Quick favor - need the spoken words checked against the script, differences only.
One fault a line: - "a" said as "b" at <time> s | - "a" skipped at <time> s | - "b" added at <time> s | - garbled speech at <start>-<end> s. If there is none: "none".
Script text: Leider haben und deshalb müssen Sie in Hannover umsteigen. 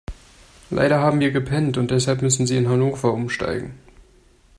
- "wir gepennt" added at 1.2 s